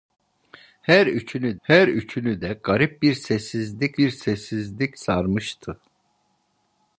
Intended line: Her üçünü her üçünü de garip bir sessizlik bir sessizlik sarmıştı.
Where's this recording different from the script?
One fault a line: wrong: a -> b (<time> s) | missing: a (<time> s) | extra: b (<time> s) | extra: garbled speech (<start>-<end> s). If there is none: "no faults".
no faults